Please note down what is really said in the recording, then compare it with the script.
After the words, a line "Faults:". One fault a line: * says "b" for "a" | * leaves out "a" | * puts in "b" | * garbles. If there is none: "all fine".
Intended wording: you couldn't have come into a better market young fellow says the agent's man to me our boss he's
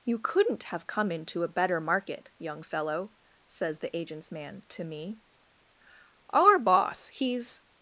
you couldn't have come into a better market young fellow says the agent's man to me our boss he's
Faults:
all fine